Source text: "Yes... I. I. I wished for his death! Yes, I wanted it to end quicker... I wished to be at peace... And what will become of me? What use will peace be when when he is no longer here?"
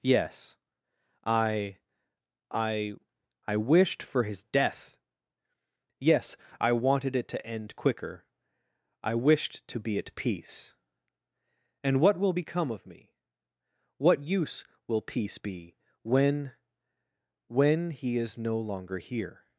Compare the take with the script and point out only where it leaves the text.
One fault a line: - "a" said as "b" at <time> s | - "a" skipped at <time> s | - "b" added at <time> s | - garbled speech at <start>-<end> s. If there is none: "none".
none